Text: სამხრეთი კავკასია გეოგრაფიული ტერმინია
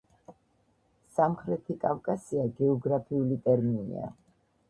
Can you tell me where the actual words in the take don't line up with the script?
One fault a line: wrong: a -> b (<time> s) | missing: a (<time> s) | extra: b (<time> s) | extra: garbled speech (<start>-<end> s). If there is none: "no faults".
no faults